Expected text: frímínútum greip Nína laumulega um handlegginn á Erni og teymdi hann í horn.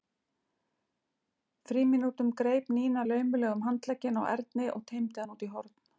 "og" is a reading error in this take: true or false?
false